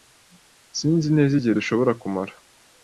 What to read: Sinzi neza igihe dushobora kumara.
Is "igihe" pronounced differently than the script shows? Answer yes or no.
no